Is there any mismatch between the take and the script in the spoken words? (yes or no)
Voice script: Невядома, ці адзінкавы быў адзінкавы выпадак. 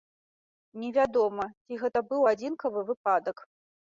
yes